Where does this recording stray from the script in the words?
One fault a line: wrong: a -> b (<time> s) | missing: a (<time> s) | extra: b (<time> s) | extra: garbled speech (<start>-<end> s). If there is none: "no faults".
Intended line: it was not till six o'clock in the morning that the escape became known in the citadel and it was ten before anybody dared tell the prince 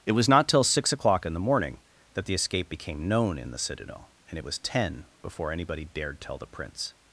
no faults